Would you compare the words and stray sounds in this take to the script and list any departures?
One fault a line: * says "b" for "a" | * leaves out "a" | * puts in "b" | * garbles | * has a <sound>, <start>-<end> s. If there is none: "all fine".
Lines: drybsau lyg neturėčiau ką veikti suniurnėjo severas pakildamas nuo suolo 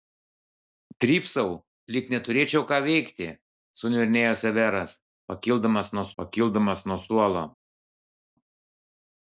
* puts in "pakildamas nuo"